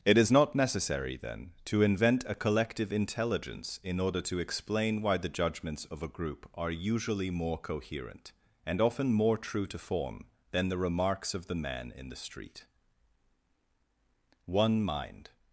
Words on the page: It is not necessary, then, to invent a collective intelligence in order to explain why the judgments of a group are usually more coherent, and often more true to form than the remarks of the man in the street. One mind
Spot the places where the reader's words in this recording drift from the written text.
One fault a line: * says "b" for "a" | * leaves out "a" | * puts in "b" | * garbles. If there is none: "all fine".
all fine